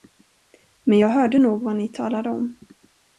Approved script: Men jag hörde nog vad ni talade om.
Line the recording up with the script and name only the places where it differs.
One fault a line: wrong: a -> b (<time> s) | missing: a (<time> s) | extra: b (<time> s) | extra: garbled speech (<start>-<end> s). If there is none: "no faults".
no faults